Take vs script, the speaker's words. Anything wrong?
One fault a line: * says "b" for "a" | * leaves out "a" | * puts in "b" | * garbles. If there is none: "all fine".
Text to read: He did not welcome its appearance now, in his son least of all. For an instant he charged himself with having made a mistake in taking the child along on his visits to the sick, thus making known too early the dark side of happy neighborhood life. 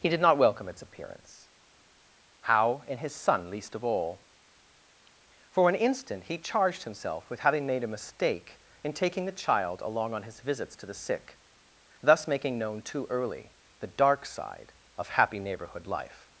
* says "how" for "now"